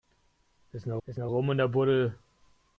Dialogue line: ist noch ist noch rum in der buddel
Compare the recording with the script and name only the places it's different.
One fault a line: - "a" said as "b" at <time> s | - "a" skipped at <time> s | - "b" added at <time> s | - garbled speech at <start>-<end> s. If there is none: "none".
none